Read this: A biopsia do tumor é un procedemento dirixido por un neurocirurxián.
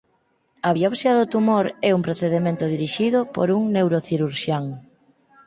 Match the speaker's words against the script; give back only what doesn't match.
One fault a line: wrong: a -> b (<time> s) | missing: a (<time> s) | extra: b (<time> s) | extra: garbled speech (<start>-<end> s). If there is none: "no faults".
no faults